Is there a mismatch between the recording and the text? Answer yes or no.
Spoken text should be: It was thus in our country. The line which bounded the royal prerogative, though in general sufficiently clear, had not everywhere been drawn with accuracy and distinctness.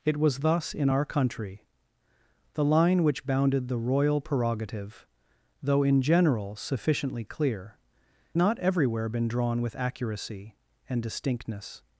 yes